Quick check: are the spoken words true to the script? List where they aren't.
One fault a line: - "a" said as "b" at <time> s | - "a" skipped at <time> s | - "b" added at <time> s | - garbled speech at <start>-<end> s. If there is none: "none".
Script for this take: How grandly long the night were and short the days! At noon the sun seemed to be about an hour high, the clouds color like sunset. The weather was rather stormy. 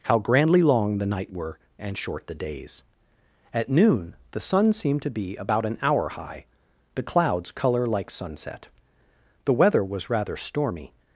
none